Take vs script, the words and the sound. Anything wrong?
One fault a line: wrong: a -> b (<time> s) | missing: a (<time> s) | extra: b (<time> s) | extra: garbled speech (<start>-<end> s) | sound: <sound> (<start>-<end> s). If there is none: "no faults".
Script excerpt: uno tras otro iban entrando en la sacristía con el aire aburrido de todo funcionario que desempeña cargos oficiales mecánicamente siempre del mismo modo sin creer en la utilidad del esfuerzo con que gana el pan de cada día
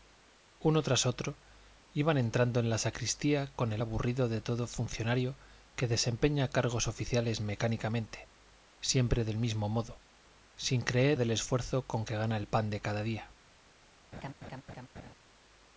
missing: aire (3.8 s)
missing: en la utilidad (11.2 s)
sound: laugh (14.1-15.1 s)